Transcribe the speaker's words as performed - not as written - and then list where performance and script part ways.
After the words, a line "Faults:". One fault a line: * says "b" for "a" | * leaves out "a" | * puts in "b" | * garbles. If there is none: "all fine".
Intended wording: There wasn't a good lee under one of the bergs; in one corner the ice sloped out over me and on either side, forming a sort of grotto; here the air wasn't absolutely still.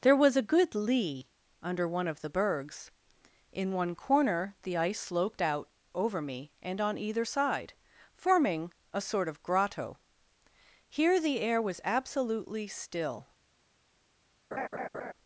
There was a good lee under one of the bergs; in one corner the ice sloped out over me and on either side, forming a sort of grotto; here the air was absolutely still.
Faults:
* says "was" for "wasn't"
* says "was" for "wasn't"